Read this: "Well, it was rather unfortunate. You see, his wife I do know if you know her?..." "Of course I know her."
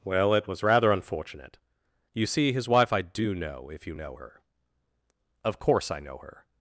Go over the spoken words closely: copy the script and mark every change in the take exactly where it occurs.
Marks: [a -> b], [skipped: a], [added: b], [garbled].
"Well, it was rather unfortunate. You see, his wife I do know if you know her?..." "Of course I know her."